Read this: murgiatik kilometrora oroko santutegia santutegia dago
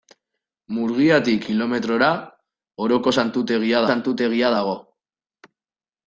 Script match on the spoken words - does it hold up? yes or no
yes